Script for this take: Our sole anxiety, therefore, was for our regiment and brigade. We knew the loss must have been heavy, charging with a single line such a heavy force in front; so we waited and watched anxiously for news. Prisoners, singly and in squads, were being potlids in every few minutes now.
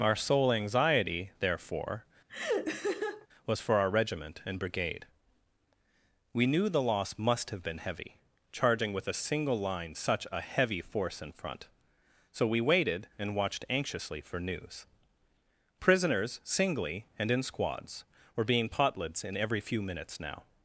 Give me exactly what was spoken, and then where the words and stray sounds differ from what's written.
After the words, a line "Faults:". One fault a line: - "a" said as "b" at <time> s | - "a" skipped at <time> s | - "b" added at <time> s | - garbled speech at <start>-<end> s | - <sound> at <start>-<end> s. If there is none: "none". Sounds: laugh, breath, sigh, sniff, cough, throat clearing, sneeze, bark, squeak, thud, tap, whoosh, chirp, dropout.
Our sole anxiety, therefore, was for our regiment and brigade. We knew the loss must have been heavy, charging with a single line such a heavy force in front; so we waited and watched anxiously for news. Prisoners, singly and in squads, were being potlids in every few minutes now.
Faults:
- laugh at 2.3-3.3 s